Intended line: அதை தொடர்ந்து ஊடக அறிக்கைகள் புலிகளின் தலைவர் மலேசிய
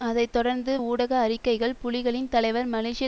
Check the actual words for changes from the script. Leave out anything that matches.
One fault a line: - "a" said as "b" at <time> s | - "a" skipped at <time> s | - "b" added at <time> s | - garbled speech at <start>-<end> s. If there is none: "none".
none